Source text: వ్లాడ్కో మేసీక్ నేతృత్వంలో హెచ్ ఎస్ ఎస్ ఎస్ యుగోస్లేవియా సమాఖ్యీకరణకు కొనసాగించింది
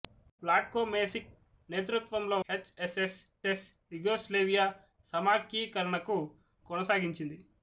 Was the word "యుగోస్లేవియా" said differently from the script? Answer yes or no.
no